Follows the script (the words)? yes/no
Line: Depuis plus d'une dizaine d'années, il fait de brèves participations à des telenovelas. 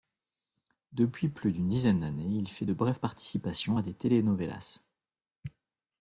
yes